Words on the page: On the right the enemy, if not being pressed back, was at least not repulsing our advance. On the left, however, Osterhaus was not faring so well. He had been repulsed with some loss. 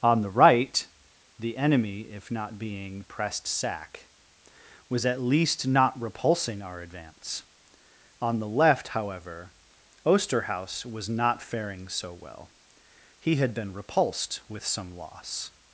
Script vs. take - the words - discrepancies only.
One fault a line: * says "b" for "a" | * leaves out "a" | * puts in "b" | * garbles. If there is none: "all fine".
* says "sack" for "back"